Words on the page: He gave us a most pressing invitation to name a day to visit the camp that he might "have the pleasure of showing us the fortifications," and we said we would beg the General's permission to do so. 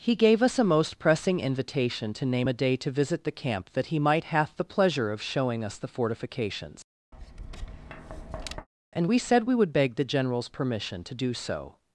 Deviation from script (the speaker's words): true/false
true